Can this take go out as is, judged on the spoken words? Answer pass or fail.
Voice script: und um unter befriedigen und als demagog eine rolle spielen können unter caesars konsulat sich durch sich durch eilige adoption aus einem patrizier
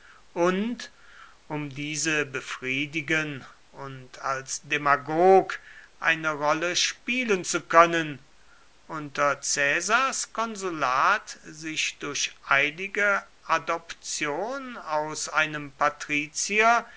fail